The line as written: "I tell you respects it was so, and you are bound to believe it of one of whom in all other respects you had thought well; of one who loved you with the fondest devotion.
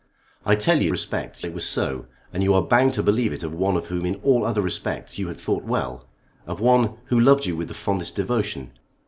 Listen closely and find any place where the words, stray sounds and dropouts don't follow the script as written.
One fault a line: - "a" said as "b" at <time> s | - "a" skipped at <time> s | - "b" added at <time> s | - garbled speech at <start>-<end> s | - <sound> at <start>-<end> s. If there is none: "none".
none